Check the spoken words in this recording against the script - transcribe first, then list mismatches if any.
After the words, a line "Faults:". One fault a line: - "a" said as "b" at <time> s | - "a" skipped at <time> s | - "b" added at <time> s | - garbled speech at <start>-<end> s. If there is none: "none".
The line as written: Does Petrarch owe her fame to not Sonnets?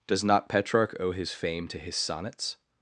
Does not Petrarch owe his fame to his Sonnets?
Faults:
- "not" added at 0.2 s
- "her" said as "his" at 1.1 s
- "not" said as "his" at 1.8 s